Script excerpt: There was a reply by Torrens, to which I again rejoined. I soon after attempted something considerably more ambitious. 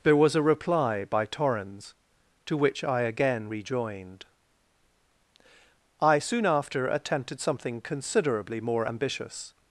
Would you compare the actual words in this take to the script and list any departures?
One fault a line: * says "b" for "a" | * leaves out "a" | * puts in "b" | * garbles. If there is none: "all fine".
all fine